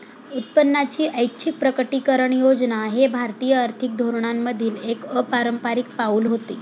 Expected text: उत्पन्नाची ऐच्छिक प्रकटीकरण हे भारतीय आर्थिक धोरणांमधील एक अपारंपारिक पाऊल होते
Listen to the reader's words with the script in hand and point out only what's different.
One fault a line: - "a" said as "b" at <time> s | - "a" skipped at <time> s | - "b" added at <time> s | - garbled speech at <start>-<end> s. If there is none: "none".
- "योजना" added at 2.3 s